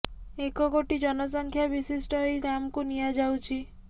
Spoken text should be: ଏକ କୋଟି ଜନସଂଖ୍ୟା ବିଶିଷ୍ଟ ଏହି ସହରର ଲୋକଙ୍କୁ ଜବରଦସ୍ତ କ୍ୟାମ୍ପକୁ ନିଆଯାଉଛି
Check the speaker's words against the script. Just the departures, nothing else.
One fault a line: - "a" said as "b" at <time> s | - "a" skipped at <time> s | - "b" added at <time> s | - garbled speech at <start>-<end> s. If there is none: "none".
- "ସହରର ଲୋକଙ୍କୁ ଜବରଦସ୍ତ" skipped at 2.4 s